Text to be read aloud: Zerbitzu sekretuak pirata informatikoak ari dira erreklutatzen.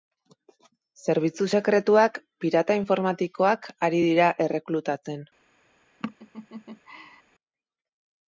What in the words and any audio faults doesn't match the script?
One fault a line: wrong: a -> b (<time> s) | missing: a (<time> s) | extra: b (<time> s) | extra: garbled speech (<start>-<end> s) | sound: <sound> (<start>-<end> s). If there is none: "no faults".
sound: laugh (6.0-7.2 s)